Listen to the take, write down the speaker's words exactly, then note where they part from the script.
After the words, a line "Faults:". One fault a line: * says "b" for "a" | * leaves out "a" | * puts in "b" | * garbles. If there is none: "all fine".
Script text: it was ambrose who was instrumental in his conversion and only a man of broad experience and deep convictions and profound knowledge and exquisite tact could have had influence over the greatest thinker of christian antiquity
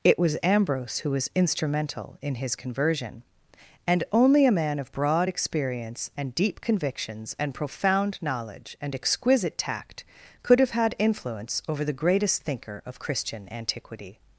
it was ambrose who was instrumental in his conversion and only a man of broad experience and deep convictions and profound knowledge and exquisite tact could have had influence over the greatest thinker of christian antiquity
Faults:
all fine